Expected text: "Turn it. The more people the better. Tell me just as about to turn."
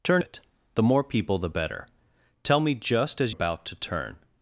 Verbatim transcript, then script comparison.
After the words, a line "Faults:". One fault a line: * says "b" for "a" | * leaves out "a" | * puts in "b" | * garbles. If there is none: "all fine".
"Turn it. The more people the better. Tell me just as about to turn."
Faults:
all fine